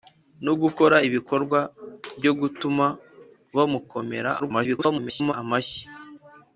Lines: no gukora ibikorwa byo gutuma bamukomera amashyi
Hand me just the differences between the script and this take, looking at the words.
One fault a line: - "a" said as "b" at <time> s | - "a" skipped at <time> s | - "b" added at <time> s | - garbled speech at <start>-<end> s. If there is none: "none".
- garbled speech at 4.4-5.3 s